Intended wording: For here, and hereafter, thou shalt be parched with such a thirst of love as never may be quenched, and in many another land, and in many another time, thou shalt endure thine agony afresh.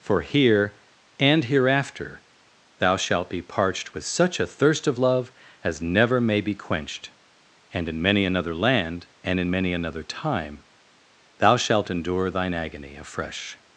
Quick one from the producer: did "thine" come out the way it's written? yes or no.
yes